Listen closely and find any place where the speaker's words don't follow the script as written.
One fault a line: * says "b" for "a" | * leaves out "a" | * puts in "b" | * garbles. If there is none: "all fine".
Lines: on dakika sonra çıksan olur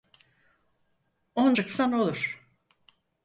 * leaves out "dakika sonra"